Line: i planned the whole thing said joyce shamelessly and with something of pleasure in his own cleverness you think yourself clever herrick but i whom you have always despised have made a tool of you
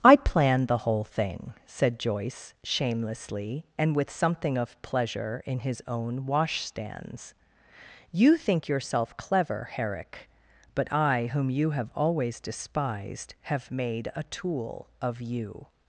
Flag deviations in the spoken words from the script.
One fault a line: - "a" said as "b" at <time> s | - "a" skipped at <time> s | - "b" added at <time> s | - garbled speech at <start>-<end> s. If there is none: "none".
- "cleverness" said as "washstands" at 6.2 s